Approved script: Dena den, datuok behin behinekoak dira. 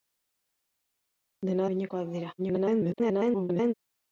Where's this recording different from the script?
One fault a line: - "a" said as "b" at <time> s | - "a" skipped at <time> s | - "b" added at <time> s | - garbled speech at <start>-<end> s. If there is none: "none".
- "den datuok behin" skipped at 1.7 s
- garbled speech at 2.4-3.7 s